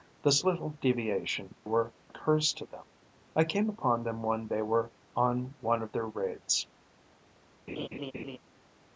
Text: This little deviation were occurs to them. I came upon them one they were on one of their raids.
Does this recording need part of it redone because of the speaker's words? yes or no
no